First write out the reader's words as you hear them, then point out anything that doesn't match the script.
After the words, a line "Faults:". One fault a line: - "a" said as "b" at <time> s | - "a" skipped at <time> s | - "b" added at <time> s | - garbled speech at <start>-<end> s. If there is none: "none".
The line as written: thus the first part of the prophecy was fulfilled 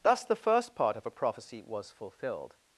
thus the first part of a prophecy was fulfilled
Faults:
- "the" said as "a" at 1.0 s